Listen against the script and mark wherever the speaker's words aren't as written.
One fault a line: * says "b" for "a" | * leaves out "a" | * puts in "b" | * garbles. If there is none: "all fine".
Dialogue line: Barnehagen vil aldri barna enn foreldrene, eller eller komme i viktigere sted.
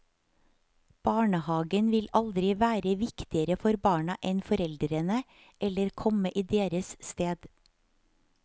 * puts in "være viktigere for"
* leaves out "eller"
* says "deres" for "viktigere"